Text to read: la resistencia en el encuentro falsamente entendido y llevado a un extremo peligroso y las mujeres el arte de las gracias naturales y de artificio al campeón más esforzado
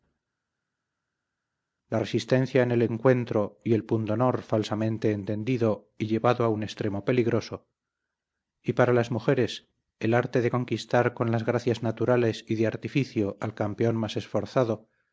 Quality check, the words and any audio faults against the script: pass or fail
fail